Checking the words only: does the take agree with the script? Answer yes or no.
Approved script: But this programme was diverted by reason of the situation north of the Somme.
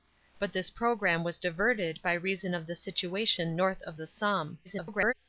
no